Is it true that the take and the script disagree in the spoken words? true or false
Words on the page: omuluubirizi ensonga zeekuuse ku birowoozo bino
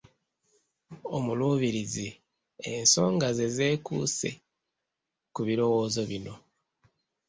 true